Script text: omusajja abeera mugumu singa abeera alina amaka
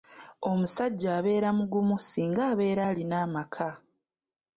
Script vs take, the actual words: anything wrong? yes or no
no